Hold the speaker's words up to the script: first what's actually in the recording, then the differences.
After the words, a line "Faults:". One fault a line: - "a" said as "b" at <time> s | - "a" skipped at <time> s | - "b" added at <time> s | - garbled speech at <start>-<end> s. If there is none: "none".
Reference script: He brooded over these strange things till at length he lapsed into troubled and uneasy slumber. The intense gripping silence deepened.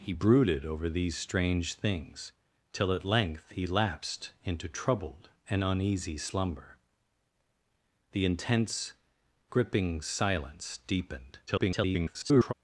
He brooded over these strange things till at length he lapsed into troubled and uneasy slumber. The intense gripping silence deepened. [garbled]
Faults:
- garbled speech at 11.5-12.5 s